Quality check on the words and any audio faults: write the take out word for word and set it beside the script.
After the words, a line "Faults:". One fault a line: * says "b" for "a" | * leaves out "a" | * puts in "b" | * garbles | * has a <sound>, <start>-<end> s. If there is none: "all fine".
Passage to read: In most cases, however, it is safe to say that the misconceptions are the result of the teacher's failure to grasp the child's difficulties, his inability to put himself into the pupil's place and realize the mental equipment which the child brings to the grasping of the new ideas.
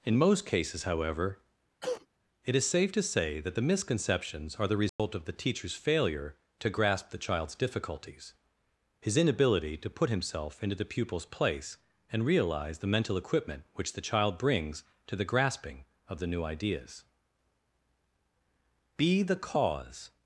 In most cases, however, it is safe to say that the misconceptions are the result of the teacher's failure to grasp the child's difficulties, his inability to put himself into the pupil's place and realize the mental equipment which the child brings to the grasping of the new ideas. Be the cause
Faults:
* has a cough, 1.8-2.1 s
* has a dropout, 4.9-5.0 s
* puts in "Be the cause"